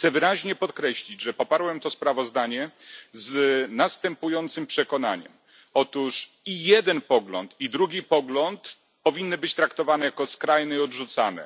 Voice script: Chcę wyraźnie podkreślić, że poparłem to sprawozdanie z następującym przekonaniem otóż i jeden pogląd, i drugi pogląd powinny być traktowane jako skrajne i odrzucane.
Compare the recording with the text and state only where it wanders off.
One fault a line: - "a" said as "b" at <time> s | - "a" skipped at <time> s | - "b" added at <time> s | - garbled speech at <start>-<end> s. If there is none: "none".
none